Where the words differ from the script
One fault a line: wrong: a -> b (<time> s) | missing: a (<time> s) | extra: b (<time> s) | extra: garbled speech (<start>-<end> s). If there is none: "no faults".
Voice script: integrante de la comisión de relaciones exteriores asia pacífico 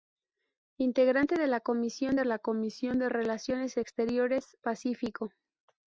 extra: la comisión de (2.2 s)
missing: asia (4.6 s)